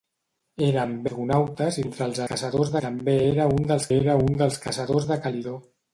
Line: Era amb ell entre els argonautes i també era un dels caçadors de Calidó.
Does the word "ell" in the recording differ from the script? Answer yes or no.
yes